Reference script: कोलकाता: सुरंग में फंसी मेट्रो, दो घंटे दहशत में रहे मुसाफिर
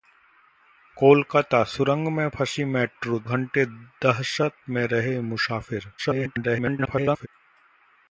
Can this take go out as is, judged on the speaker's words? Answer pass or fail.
fail